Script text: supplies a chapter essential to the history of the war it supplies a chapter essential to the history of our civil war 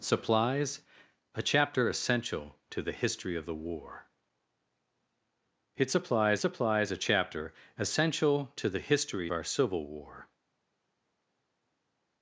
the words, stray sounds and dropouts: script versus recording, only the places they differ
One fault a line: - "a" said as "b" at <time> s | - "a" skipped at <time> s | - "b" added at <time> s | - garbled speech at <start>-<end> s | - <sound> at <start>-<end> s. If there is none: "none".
- "supplies" added at 6.4 s
- "of" skipped at 9.3 s